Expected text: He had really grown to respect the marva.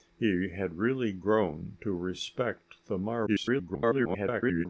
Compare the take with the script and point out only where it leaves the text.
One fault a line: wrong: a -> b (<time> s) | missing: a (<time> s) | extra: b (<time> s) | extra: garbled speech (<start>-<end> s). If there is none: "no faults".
extra: garbled speech (3.3-4.7 s)